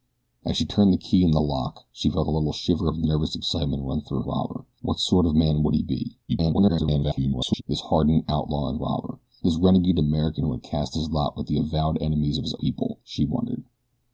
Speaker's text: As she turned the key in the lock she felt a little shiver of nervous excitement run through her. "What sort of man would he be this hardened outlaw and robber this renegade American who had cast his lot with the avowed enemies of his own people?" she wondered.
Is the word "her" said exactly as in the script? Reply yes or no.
no